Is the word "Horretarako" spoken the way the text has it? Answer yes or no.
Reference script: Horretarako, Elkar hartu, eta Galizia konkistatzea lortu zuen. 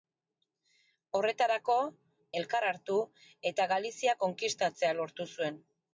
yes